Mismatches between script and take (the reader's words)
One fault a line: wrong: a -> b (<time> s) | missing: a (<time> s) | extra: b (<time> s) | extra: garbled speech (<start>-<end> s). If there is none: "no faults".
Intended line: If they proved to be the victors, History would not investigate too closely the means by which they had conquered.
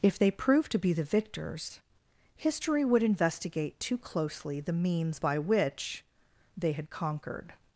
missing: not (3.0 s)